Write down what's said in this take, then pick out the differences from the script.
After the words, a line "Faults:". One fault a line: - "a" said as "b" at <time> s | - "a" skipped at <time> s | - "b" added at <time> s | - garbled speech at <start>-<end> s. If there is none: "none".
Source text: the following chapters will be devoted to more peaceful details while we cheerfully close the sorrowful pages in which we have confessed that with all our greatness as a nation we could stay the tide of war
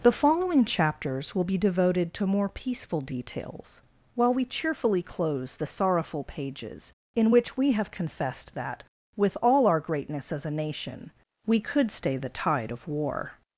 the following chapters will be devoted to more peaceful details while we cheerfully close the sorrowful pages in which we have confessed that with all our greatness as a nation we could stay the tide of war
Faults:
none